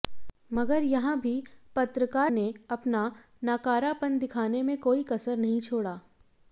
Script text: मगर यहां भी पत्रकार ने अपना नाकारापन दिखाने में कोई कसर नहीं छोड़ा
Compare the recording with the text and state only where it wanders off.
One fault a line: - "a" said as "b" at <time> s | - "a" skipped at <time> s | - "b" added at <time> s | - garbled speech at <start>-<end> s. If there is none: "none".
none